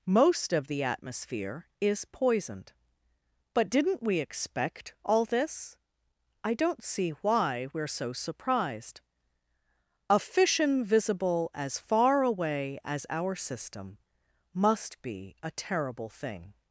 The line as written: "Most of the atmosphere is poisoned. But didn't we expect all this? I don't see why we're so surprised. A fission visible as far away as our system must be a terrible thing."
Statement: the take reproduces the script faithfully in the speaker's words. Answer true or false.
true